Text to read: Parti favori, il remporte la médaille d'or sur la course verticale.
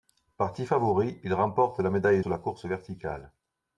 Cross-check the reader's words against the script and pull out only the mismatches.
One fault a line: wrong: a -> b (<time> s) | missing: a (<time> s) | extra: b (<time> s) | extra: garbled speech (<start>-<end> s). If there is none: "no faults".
missing: d'or (2.2 s)